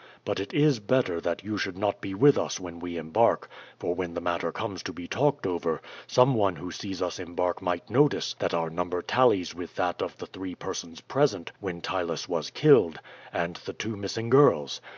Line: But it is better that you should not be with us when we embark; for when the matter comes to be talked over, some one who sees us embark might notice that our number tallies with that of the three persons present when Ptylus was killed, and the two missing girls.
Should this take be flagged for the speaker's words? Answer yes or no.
no